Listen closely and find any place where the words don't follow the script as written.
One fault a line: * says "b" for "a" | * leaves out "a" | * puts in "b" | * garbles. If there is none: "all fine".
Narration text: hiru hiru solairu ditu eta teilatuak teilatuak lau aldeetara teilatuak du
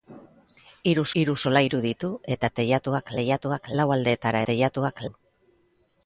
all fine